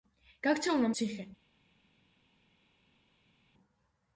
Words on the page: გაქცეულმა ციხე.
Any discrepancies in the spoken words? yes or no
no